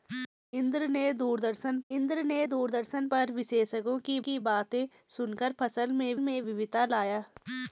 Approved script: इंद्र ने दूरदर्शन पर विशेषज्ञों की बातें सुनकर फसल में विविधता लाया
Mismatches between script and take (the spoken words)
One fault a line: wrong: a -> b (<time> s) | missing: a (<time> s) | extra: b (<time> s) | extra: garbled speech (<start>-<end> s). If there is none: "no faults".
extra: इंद्र ने दूरदर्शन (1.9 s)
extra: की (4.2 s)
extra: में (6.2 s)